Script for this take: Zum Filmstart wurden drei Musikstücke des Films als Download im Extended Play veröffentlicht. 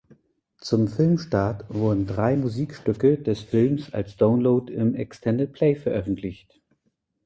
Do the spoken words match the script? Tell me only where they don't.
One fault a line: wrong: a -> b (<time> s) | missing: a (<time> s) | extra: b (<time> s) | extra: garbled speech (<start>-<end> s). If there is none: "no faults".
no faults